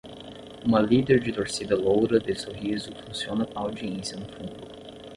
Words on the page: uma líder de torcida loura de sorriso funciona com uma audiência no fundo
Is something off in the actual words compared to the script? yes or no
yes